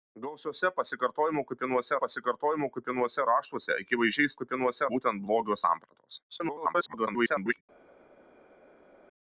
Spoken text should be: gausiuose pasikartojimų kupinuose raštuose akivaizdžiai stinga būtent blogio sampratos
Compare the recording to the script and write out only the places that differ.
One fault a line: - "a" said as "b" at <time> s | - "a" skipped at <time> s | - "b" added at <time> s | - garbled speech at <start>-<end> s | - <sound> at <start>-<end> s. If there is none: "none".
- "pasikartojimų kupinuose" added at 2.0 s
- "stinga" said as "kupinuose" at 4.4 s
- garbled speech at 6.3-7.6 s